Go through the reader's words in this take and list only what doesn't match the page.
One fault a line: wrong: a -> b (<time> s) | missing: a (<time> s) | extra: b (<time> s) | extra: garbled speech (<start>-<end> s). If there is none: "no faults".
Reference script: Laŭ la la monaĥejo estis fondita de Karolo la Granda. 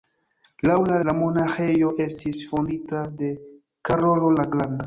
no faults